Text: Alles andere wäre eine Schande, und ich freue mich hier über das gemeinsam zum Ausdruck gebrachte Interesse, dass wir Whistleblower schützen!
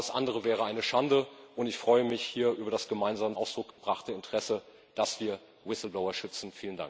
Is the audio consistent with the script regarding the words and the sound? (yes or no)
no